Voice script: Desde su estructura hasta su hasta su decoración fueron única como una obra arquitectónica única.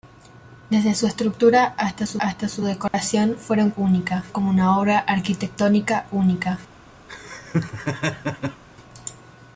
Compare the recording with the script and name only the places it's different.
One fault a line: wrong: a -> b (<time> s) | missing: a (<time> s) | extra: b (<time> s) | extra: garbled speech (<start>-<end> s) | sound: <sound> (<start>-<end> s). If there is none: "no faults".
sound: dropout (2.9-2.9 s)
sound: laugh (7.1-8.6 s)